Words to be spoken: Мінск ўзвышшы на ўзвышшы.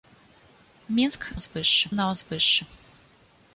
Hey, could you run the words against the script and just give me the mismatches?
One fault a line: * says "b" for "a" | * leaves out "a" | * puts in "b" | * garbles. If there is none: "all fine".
all fine